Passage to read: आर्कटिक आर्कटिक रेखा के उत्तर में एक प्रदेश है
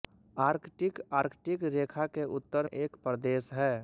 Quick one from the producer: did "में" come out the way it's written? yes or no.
no